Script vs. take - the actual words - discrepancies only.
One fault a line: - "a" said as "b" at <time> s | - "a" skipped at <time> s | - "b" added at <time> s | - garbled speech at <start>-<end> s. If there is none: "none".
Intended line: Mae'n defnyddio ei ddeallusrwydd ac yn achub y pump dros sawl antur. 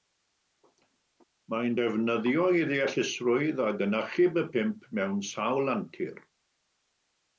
- "dros" said as "mewn" at 5.0 s